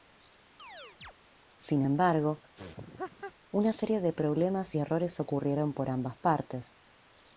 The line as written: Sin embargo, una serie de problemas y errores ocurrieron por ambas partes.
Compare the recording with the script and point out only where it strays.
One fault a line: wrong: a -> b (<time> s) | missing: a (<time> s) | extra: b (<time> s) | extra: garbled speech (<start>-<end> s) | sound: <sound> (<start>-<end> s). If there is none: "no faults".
sound: chirp (0.6-1.1 s)
sound: laugh (2.5-3.3 s)